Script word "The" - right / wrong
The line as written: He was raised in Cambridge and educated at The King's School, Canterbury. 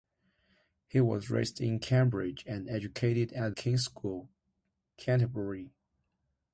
wrong